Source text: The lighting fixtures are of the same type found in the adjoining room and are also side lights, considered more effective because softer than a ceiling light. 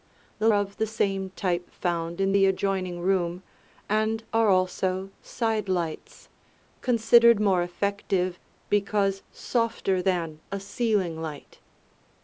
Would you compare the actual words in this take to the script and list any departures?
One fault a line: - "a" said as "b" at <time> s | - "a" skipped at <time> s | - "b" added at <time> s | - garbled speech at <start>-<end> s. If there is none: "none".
- "lighting fixtures are" skipped at 0.5 s